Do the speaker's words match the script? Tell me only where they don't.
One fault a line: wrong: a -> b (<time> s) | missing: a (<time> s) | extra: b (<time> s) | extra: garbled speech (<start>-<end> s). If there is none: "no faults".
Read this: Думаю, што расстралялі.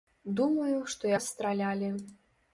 no faults